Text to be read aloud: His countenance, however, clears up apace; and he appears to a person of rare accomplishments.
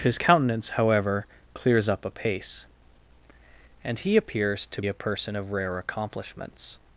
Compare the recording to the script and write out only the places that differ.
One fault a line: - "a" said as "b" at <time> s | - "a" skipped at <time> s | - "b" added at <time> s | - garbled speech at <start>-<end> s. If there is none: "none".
none